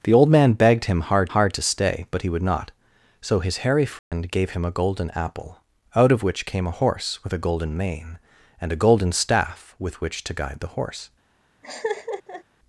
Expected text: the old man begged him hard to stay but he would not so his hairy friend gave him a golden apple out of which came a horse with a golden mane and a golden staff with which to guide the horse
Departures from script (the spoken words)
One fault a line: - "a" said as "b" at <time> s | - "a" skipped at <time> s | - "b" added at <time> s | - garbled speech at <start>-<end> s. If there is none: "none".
- "hard" added at 1.3 s